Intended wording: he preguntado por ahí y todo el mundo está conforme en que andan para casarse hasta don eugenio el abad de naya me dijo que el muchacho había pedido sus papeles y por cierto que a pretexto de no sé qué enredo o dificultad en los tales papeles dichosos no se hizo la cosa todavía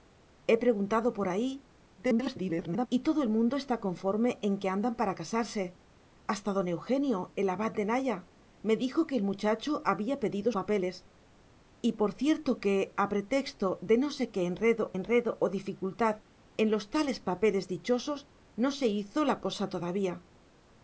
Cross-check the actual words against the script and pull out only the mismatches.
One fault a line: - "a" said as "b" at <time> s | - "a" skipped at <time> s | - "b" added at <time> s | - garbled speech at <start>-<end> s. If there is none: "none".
- garbled speech at 2.0-2.9 s
- "sus" skipped at 10.5 s
- "enredo" added at 14.9 s